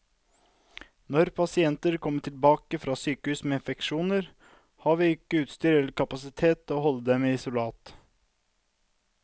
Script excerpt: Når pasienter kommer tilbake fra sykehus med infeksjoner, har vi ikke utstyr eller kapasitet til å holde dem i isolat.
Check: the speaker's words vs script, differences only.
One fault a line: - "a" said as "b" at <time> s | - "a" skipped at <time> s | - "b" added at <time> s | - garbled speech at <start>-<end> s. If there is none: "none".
none